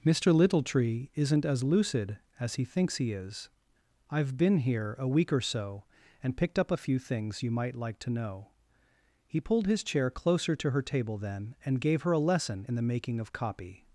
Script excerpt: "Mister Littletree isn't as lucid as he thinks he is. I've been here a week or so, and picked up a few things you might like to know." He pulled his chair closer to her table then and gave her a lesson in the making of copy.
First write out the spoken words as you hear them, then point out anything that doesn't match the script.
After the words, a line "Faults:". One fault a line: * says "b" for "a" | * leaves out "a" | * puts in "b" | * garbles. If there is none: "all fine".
"Mister Littletree isn't as lucid as he thinks he is. I've been here a week or so, and picked up a few things you might like to know." He pulled his chair closer to her table then and gave her a lesson in the making of copy.
Faults:
all fine